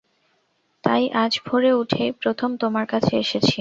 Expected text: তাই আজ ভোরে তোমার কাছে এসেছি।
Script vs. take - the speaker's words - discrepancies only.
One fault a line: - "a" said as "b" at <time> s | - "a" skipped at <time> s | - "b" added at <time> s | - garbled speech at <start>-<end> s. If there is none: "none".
- "উঠেই প্রথম" added at 1.7 s